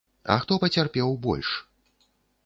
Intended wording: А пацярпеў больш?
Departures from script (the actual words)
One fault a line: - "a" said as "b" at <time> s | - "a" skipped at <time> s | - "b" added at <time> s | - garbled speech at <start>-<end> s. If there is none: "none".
- "хто" added at 0.4 s